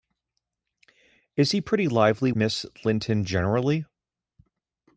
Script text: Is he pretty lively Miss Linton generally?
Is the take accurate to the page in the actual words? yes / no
yes